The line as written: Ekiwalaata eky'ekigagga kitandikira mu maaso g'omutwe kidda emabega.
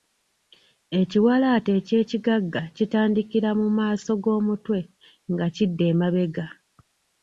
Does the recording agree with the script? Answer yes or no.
no